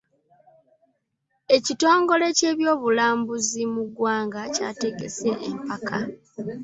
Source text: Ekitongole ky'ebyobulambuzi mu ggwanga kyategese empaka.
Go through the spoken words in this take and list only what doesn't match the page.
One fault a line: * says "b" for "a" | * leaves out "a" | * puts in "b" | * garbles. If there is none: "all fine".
all fine